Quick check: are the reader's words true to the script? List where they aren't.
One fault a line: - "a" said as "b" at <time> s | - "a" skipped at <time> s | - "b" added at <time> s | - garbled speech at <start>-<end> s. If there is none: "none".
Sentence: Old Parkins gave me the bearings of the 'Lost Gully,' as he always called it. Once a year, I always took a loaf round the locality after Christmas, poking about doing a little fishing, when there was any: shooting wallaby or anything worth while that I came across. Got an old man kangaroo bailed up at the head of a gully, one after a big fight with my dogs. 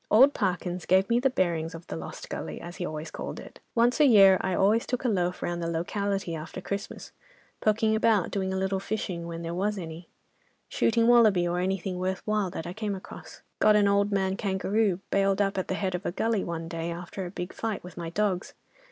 - "day" added at 16.7 s